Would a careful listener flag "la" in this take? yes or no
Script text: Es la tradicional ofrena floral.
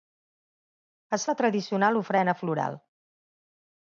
no